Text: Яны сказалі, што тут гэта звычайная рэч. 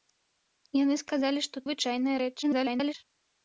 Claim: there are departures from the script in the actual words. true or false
true